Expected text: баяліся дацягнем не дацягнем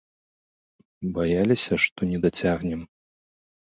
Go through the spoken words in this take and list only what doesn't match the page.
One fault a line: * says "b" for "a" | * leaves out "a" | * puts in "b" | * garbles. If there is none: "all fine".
* says "што" for "дацягнем"